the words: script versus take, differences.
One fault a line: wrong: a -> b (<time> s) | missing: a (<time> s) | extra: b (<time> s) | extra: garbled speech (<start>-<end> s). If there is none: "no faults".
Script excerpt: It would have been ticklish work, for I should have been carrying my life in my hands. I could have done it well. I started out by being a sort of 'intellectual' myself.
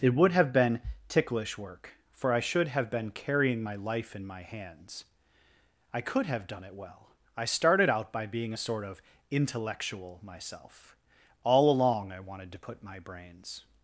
extra: All along I wanted to put my brains (11.4 s)